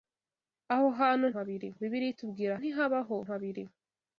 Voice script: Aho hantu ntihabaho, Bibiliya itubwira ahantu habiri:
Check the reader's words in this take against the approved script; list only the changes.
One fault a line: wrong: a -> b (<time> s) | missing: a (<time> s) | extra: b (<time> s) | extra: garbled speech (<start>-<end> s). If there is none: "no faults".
wrong: ntihabaho -> habiri (1.3 s)
wrong: ahantu -> ntihabaho (2.6 s)